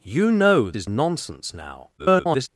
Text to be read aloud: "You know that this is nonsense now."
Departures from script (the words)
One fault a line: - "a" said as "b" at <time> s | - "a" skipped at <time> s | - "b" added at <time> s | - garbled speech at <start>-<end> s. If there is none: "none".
- "that this" skipped at 0.7 s
- garbled speech at 2.0-2.5 s